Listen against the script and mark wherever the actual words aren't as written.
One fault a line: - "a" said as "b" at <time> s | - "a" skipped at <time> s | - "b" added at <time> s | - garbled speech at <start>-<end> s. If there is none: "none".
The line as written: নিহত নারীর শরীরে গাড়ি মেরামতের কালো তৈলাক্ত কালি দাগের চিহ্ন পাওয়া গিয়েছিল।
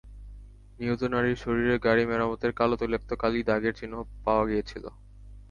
none